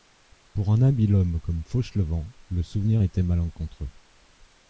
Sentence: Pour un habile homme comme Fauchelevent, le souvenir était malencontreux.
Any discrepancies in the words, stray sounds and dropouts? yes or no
no